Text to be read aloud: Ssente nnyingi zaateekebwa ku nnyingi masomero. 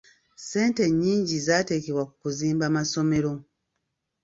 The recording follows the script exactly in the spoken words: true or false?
false